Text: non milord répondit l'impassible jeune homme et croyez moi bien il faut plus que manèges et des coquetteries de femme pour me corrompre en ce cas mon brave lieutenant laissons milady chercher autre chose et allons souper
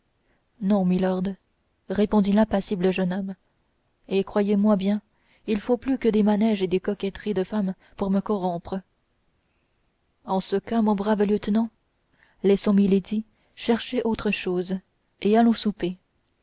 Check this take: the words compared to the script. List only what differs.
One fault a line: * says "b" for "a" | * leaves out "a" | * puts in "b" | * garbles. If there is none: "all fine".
* puts in "des"